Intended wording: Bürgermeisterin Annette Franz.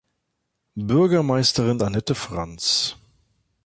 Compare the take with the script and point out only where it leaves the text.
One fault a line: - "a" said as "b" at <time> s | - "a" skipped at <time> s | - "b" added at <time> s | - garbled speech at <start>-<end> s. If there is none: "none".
none